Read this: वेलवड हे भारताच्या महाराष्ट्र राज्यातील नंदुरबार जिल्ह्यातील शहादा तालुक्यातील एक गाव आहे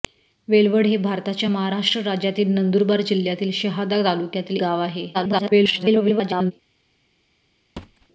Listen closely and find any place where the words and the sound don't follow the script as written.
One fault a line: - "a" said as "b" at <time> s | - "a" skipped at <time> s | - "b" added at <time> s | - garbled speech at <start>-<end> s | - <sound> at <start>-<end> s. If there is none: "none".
- "एक" skipped at 4.6 s
- garbled speech at 5.1-6.5 s
- thud at 7.8-8.1 s